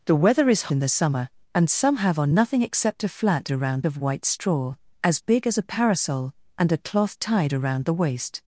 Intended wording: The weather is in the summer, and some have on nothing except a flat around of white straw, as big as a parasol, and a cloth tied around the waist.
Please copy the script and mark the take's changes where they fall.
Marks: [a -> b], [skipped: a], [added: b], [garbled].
The weather is in the summer, and some have on nothing except a flat around of white straw, as big as a parasol, and a cloth tied around the waist.